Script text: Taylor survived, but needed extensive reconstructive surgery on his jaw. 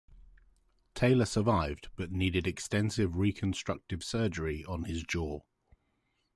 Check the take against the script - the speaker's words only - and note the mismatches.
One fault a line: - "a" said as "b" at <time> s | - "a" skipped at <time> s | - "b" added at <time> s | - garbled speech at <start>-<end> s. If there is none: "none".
none